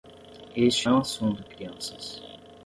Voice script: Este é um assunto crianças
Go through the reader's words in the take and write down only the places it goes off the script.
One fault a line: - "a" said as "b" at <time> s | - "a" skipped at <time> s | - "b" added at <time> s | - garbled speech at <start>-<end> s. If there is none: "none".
none